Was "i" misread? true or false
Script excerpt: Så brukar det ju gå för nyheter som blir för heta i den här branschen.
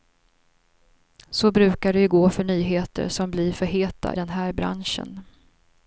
true